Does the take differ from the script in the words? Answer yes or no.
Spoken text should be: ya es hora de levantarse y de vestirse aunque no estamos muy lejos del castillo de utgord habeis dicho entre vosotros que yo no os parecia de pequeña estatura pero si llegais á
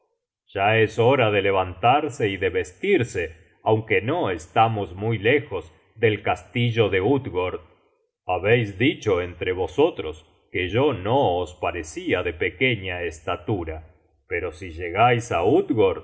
no